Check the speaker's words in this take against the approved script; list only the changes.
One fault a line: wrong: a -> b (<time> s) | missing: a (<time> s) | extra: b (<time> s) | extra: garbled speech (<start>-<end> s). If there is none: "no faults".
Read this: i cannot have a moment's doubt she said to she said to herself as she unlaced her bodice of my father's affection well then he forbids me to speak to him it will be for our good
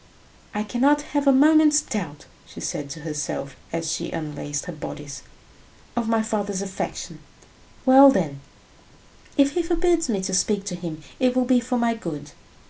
missing: she said to (3.0 s)
extra: if (9.4 s)
wrong: our -> my (11.8 s)